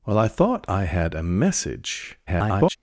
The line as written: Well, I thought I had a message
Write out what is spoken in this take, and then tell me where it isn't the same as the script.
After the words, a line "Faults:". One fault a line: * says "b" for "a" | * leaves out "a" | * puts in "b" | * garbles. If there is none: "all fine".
Well, I thought I had a message [garbled]
Faults:
* garbles